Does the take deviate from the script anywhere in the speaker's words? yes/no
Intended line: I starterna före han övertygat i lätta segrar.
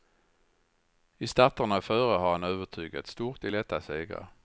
yes